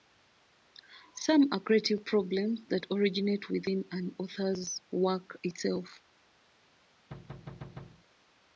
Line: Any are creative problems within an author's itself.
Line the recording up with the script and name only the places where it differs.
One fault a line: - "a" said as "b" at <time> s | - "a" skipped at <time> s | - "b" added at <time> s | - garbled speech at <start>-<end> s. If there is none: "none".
- "Any" said as "Some" at 1.2 s
- "that originate" added at 2.7 s
- "work" added at 4.9 s